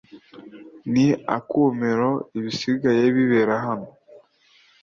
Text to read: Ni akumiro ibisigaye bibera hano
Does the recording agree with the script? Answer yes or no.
yes